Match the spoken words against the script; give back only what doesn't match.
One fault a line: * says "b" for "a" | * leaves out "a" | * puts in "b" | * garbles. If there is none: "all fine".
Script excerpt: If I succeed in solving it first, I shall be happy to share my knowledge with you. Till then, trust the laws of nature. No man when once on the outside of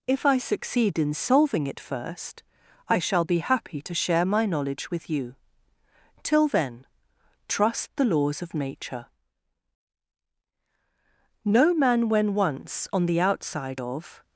all fine